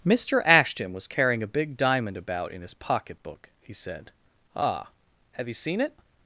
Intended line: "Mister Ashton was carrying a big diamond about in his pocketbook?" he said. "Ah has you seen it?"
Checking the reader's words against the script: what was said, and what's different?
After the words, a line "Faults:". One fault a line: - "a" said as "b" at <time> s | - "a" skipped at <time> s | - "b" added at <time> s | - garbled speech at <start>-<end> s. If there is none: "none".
"Mister Ashton was carrying a big diamond about in his pocketbook?" he said. "Ah have you seen it?"
Faults:
- "has" said as "have" at 5.3 s